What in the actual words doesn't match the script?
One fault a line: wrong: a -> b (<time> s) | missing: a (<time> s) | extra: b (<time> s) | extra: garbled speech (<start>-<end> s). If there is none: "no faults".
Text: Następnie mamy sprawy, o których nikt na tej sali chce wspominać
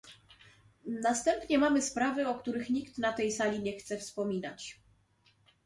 extra: nie (3.6 s)